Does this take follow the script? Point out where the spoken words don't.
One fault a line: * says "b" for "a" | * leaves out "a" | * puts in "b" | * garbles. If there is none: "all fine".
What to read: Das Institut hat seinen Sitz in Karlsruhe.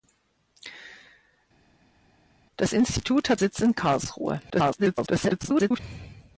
* leaves out "seinen"
* garbles